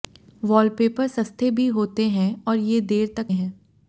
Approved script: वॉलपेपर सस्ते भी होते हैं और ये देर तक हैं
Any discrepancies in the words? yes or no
no